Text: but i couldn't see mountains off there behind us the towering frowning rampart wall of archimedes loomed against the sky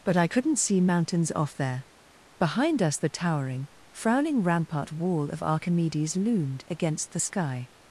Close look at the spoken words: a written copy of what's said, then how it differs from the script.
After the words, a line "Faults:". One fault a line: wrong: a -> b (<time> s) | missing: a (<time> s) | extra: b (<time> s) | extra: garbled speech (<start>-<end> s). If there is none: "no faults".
but i couldn't see mountains off there behind us the towering frowning rampart wall of archimedes loomed against the sky
Faults:
no faults